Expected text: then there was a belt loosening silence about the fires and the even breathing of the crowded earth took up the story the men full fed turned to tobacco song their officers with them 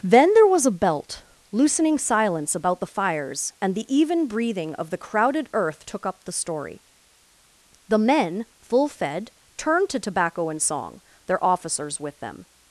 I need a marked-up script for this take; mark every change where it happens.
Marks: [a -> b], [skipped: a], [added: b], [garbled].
then there was a belt loosening silence about the fires and the even breathing of the crowded earth took up the story the men full fed turned to tobacco [added: and] song their officers with them